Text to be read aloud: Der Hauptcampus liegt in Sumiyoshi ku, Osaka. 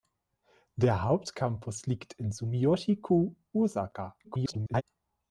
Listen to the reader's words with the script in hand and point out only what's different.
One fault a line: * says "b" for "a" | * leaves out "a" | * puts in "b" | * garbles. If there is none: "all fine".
* garbles